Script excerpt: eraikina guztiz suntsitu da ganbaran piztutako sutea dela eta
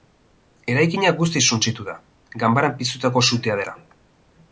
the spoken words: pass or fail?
fail